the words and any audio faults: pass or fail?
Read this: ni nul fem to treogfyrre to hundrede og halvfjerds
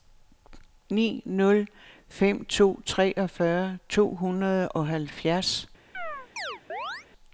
fail